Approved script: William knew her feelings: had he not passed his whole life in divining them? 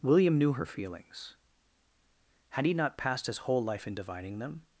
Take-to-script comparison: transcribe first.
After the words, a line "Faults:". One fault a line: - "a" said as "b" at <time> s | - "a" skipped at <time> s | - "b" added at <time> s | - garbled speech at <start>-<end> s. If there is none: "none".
William knew her feelings: had he not passed his whole life in divining them?
Faults:
none